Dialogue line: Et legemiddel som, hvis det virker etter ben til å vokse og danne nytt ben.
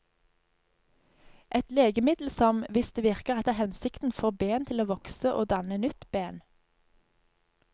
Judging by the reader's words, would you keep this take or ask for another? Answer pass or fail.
fail